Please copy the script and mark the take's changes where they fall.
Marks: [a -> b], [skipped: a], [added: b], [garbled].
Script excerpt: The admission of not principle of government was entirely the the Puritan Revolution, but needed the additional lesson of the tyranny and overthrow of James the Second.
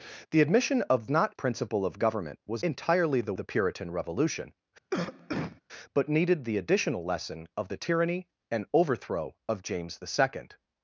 The admission of not principle of government was entirely the the Puritan Revolution, but needed the additional lesson of the tyranny and overthrow of James the Second.